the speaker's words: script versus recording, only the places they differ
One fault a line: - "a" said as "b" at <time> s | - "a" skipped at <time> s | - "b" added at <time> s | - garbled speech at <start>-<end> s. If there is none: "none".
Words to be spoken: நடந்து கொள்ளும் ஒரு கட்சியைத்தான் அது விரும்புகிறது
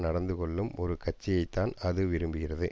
none